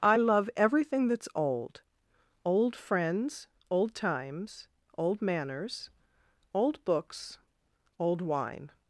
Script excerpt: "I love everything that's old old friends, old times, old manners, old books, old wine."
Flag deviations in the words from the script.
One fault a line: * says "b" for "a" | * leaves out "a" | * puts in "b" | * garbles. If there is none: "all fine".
all fine